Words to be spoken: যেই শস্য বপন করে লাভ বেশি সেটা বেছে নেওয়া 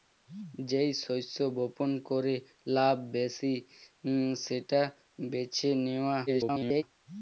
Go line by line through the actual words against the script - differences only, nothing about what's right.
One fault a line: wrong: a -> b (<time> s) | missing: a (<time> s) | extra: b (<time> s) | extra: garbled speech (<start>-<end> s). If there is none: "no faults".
extra: garbled speech (6.3-6.8 s)